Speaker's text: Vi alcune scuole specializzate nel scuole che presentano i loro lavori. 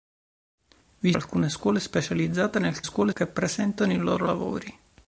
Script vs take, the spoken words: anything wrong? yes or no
no